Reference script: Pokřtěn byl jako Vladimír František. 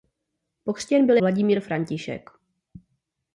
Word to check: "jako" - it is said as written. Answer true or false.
false